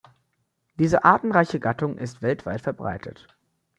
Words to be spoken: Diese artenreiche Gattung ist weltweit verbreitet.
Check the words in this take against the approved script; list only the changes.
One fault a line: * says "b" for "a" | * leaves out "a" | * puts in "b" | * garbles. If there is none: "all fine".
all fine